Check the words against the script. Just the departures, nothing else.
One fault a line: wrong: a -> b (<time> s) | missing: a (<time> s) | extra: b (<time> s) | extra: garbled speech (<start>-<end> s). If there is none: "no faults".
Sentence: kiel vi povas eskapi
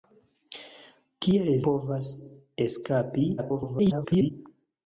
missing: vi (1.5 s)
extra: garbled speech (3.4-4.3 s)